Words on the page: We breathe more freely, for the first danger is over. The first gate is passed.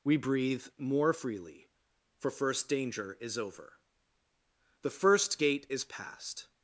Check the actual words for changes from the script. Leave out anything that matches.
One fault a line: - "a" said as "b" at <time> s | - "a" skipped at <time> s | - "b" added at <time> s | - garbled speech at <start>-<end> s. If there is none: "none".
- "the" skipped at 2.3 s